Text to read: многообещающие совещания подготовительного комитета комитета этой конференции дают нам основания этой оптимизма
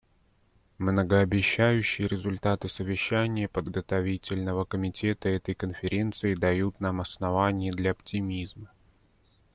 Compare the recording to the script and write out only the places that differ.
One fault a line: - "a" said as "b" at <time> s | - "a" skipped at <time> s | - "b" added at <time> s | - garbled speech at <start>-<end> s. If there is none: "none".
- "результаты" added at 2.1 s
- "комитета" skipped at 5.3 s
- "этой" said as "для" at 7.7 s